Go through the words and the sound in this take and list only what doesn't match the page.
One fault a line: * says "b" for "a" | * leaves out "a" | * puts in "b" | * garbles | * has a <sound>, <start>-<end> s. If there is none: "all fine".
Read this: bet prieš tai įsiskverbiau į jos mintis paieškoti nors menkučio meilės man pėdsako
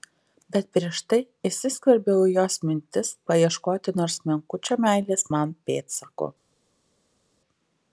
all fine